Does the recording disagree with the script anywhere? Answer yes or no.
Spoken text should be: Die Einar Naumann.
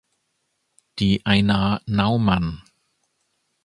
no